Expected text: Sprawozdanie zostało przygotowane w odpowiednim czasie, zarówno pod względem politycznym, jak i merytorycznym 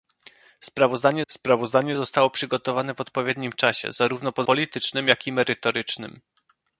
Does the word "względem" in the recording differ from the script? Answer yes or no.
yes